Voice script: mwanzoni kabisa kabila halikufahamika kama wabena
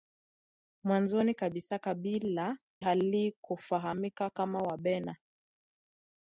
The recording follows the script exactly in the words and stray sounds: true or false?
true